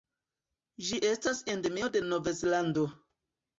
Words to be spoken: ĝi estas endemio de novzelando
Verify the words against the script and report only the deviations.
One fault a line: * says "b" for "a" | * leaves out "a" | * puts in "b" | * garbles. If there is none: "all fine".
all fine